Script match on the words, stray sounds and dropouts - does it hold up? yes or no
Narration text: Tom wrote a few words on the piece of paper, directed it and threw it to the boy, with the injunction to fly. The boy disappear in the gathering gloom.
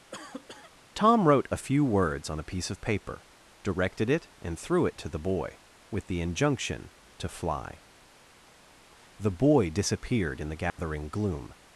no